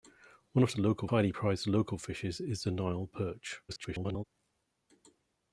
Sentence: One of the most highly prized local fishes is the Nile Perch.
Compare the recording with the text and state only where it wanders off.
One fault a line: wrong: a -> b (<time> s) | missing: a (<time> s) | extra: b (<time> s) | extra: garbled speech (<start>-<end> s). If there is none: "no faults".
wrong: most -> local (0.8 s)
extra: garbled speech (3.7-4.2 s)